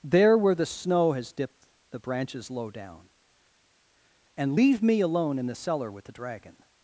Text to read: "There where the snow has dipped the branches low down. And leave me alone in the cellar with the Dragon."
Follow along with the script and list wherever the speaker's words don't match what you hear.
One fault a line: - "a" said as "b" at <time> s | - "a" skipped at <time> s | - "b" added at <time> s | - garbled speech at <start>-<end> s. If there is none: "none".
none